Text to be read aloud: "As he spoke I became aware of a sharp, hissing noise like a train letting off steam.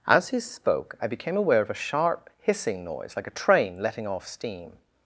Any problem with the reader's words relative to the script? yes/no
no